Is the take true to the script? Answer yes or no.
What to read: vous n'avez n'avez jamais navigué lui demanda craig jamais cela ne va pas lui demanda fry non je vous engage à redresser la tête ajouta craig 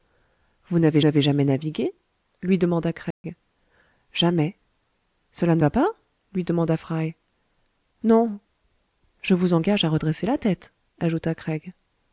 yes